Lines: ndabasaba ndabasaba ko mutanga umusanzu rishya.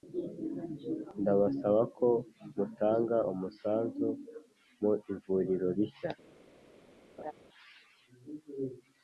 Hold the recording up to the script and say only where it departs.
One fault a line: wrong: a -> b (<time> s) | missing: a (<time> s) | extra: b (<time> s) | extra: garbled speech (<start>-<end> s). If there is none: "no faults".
missing: ndabasaba (1.8 s)
extra: mu ivuriro (4.8 s)